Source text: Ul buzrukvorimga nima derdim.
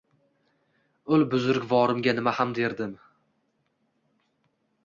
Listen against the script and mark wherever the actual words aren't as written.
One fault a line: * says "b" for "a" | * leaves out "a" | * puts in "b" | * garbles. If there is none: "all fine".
* puts in "ham"